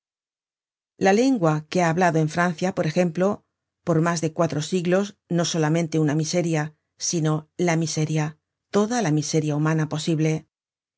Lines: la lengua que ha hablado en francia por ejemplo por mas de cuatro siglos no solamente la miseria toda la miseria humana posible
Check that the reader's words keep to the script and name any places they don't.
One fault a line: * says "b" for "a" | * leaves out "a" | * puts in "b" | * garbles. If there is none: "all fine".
* puts in "una miseria sino"